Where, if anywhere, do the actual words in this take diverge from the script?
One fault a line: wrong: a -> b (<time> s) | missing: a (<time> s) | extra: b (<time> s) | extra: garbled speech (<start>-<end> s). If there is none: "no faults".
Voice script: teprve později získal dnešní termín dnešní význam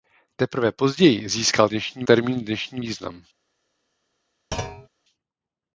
no faults